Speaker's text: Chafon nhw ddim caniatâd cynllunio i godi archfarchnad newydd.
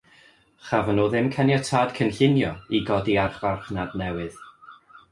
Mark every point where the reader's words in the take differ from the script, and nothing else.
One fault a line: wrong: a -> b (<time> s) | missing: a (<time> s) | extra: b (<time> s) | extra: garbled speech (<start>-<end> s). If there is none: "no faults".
no faults